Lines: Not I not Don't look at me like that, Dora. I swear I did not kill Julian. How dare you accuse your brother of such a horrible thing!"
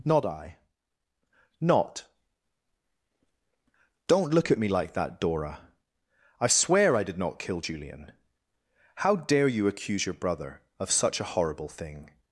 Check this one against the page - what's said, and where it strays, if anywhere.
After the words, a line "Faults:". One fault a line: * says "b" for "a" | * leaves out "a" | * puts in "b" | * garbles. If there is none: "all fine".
Not I not Don't look at me like that, Dora. I swear I did not kill Julian. How dare you accuse your brother of such a horrible thing!"
Faults:
all fine